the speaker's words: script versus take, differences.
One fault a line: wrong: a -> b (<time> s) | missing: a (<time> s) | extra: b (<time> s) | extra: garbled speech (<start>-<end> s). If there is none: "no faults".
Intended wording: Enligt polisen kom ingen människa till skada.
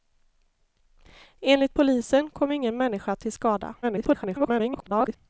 extra: garbled speech (3.8-5.2 s)